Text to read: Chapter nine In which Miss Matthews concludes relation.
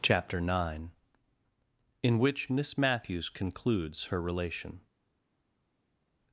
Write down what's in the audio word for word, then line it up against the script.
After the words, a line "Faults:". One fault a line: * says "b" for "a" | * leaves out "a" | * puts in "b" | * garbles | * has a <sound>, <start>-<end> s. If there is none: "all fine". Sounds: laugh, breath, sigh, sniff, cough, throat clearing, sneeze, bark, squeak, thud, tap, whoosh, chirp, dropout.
Chapter nine In which Miss Matthews concludes her relation.
Faults:
* puts in "her"